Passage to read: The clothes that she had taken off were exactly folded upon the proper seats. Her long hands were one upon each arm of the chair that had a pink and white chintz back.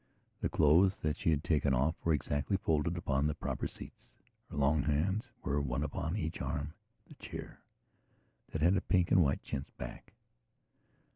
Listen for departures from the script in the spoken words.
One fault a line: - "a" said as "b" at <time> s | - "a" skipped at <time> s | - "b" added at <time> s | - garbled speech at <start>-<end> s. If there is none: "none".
none